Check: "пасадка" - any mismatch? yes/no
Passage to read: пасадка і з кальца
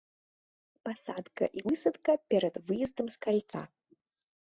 no